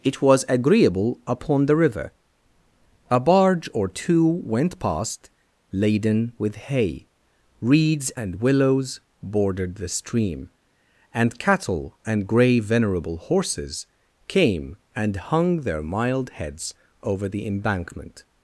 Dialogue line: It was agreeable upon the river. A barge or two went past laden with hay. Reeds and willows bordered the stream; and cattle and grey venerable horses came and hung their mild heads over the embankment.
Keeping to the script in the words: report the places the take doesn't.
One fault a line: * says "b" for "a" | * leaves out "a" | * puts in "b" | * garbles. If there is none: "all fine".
all fine